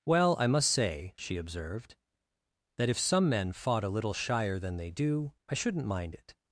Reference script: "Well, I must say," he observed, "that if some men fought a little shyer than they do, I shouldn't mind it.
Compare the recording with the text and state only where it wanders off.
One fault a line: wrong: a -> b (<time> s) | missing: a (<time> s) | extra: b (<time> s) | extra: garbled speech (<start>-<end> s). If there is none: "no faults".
wrong: he -> she (1.2 s)